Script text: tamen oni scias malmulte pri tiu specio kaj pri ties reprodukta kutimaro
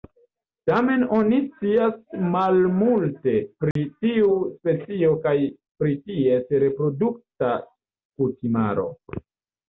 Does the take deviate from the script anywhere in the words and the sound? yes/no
yes